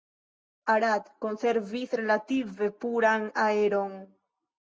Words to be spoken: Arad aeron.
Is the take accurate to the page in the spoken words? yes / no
no